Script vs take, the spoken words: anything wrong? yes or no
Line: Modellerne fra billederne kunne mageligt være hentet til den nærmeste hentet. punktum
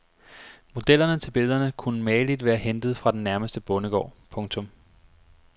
yes